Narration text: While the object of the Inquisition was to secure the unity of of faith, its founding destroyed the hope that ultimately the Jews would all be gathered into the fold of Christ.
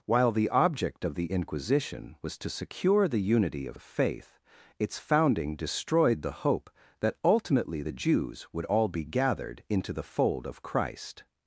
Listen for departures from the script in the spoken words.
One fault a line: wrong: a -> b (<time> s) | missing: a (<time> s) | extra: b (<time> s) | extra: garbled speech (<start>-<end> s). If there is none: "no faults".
no faults